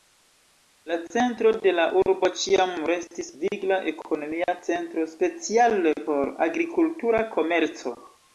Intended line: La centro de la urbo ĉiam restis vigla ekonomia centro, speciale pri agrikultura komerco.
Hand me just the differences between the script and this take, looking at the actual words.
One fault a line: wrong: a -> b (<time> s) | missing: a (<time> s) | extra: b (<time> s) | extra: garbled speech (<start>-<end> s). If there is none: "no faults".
wrong: pri -> por (6.1 s)